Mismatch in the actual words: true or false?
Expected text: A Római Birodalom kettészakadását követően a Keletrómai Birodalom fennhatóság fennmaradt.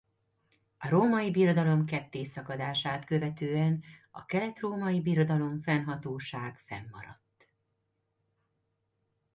false